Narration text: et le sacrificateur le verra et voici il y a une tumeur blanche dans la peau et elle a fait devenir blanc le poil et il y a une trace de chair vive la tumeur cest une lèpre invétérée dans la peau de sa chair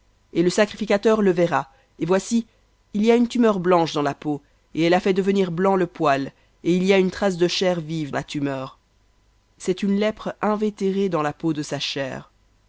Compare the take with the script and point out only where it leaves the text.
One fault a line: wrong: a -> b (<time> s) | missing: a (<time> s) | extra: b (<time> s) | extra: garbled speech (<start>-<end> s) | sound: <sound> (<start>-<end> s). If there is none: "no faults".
no faults